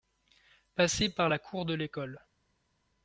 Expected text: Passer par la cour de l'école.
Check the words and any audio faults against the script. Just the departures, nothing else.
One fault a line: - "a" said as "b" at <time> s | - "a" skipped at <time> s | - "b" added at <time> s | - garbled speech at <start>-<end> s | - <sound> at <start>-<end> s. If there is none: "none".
none